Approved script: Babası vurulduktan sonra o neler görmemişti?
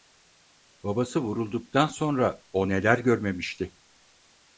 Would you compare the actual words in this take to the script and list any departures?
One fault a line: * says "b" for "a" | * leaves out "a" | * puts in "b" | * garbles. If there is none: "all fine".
all fine